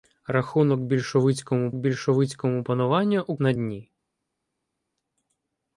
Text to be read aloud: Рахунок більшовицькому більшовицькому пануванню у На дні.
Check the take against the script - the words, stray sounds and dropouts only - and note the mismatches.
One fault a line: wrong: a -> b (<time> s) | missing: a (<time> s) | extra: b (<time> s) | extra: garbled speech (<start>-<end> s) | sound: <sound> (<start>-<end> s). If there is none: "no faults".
no faults